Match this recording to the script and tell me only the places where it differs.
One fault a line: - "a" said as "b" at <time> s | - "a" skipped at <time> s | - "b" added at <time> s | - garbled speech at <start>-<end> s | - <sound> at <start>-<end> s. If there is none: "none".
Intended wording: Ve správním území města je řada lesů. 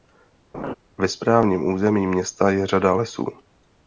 - laugh at 0.5-0.7 s